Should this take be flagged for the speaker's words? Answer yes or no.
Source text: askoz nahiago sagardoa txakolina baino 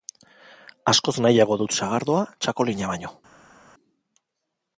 yes